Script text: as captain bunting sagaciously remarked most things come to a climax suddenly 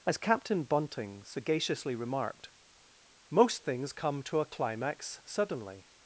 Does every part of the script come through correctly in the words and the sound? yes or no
yes